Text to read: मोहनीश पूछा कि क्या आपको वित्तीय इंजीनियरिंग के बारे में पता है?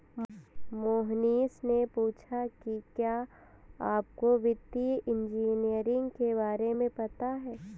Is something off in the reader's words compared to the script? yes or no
yes